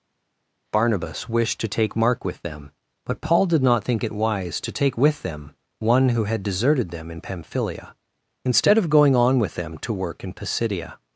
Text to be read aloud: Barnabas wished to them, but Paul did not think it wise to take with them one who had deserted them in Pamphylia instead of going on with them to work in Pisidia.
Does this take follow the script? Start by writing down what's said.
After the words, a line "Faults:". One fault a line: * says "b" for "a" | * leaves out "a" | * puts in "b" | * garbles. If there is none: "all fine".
Barnabas wished to take Mark with them, but Paul did not think it wise to take with them one who had deserted them in Pamphylia instead of going on with them to work in Pisidia.
Faults:
* puts in "take Mark with"